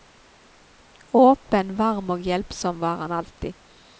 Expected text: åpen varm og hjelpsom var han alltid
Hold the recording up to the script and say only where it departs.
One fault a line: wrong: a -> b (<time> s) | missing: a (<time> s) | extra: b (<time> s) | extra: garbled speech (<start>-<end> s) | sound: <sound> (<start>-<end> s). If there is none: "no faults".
no faults